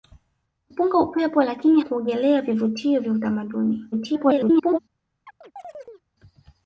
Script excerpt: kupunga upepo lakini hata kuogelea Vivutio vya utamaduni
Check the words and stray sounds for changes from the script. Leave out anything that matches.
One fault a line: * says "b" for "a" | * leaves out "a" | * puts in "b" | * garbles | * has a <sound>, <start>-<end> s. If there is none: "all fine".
* leaves out "hata"
* garbles
* has a chirp, 5.3-6.0 s